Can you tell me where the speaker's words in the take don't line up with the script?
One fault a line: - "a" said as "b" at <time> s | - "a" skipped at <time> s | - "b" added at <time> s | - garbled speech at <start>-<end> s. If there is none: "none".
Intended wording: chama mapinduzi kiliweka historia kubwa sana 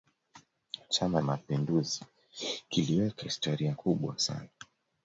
none